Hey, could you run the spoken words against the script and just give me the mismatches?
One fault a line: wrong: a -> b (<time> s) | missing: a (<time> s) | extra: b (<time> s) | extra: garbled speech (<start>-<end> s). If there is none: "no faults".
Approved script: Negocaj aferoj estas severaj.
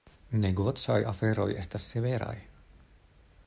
no faults